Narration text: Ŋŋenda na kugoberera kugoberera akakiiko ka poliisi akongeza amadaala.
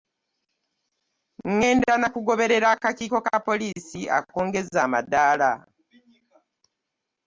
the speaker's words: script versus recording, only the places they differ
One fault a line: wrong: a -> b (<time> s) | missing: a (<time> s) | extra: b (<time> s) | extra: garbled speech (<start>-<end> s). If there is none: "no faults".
missing: kugoberera (2.7 s)